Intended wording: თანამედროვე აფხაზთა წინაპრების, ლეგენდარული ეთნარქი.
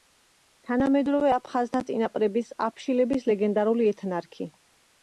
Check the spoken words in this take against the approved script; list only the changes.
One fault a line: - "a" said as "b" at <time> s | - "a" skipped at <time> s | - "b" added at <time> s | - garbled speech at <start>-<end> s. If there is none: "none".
- "აფშილების" added at 2.7 s